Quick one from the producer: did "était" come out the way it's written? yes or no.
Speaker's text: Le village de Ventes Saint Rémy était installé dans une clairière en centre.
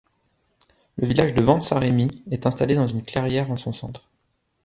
no